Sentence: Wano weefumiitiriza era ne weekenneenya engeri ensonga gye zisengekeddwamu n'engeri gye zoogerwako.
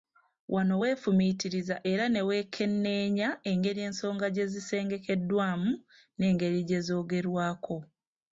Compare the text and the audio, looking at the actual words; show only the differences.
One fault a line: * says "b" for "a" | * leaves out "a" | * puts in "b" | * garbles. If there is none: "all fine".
all fine